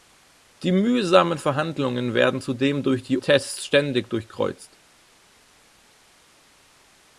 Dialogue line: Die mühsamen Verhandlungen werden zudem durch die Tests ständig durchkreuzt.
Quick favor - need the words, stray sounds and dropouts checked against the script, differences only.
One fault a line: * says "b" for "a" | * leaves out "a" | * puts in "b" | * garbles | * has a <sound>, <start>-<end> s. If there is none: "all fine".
all fine